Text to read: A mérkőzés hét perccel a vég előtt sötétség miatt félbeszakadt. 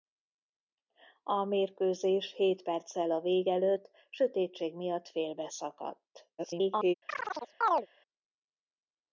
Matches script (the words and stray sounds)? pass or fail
fail